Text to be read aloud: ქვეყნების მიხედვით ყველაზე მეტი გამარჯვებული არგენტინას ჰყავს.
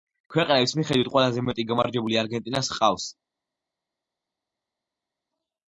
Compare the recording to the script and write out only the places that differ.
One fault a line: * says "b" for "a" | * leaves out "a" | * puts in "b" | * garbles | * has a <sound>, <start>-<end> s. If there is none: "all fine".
all fine